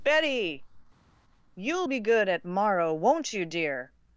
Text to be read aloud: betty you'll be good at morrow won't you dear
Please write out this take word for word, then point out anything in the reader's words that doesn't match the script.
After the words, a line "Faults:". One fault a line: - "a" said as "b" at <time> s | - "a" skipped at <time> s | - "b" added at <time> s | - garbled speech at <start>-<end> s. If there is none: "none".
betty you'll be good at morrow won't you dear
Faults:
none